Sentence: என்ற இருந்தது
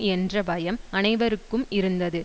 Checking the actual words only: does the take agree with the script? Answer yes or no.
no